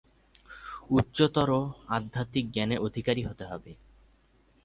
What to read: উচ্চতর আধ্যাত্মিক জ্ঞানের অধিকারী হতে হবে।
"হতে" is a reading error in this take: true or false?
false